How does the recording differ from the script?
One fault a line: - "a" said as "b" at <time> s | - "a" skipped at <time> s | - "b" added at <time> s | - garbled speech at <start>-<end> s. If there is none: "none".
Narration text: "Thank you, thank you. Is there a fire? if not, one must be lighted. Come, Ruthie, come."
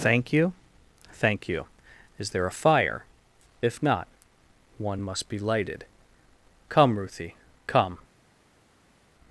none